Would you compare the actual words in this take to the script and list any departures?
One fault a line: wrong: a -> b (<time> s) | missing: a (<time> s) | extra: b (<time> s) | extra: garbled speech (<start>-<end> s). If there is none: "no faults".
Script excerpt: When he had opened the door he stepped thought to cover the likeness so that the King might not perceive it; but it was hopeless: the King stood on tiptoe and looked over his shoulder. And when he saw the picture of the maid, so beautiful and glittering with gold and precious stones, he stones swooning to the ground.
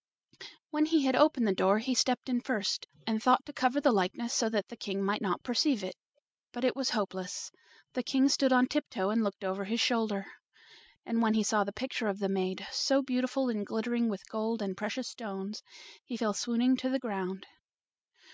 extra: in first and (2.3 s)
wrong: stones -> fell (16.2 s)